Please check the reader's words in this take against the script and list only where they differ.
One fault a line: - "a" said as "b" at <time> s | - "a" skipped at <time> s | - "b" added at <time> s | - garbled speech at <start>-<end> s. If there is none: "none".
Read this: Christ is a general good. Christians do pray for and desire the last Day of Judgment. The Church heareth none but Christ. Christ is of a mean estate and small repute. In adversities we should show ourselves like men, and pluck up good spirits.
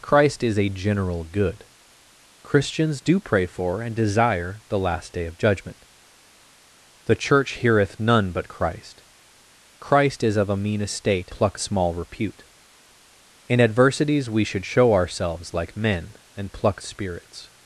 - "and" said as "pluck" at 11.3 s
- "up good" skipped at 16.8 s